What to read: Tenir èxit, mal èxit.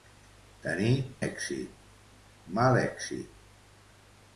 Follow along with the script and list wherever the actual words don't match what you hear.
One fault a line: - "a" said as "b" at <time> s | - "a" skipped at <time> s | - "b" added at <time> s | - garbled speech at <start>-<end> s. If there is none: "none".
none